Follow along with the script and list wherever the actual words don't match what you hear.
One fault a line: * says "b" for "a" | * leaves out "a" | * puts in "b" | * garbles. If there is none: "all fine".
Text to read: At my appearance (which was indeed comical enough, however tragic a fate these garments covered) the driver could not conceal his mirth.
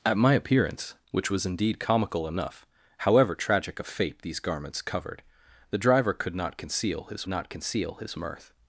* puts in "not conceal his"